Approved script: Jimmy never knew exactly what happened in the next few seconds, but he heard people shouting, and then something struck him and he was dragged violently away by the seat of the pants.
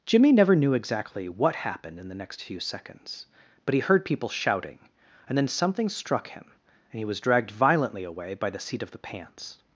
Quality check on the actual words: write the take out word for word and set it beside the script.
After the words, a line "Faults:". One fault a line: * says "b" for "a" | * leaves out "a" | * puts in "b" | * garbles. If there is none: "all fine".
Jimmy never knew exactly what happened in the next few seconds, but he heard people shouting, and then something struck him and he was dragged violently away by the seat of the pants.
Faults:
all fine